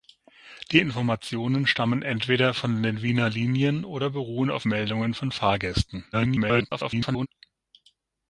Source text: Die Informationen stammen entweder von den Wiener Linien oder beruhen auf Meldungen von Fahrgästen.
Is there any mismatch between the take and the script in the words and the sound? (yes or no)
yes